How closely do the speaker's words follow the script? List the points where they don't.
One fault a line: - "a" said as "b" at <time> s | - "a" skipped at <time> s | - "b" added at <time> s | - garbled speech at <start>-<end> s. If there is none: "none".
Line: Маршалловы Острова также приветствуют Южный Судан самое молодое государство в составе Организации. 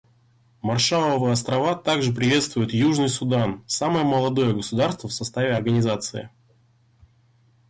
none